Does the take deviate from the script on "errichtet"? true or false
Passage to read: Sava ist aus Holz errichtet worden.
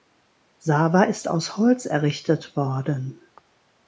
false